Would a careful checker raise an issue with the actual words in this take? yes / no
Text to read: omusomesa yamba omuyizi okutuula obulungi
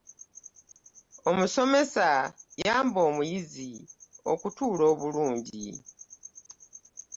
no